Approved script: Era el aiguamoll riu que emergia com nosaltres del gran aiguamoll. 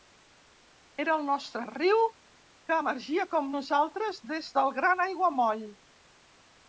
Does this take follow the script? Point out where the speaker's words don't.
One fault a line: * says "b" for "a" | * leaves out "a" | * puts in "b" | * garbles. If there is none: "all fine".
* says "nostre" for "aiguamoll"
* puts in "des"